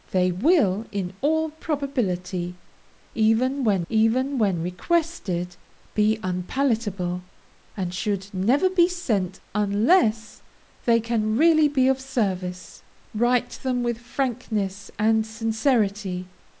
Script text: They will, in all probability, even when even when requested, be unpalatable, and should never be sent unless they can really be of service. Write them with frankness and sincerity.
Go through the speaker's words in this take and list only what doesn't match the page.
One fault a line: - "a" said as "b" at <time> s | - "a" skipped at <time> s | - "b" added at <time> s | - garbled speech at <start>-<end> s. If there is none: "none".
none